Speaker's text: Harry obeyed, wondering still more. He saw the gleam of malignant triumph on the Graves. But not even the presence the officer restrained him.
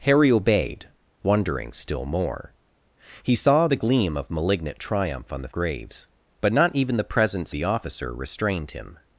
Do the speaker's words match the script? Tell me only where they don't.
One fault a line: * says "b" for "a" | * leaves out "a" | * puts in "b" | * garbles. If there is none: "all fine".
all fine